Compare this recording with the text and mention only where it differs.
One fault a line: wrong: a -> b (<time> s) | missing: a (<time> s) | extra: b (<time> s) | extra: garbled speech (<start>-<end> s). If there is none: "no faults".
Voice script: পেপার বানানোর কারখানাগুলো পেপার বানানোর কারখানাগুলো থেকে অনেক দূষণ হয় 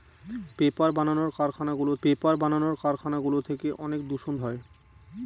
no faults